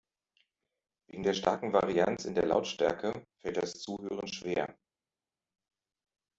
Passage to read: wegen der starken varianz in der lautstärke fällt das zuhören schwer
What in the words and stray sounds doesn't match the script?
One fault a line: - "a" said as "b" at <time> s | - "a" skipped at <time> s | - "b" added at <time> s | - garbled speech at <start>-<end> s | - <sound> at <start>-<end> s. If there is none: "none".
none